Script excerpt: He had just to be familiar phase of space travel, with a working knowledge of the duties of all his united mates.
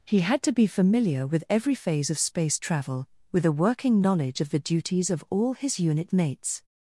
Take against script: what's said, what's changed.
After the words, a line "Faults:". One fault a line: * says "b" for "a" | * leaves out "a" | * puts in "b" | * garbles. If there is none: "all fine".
He had to be familiar with every phase of space travel, with a working knowledge of the duties of all his unit mates.
Faults:
* leaves out "just"
* puts in "with every"
* says "unit" for "united"